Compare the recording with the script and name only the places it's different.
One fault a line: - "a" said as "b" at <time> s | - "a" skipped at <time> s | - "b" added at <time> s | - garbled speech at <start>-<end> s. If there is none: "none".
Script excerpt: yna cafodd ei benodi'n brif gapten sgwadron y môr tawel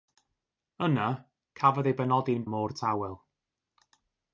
- "brif gapten sgwadron" skipped at 2.5 s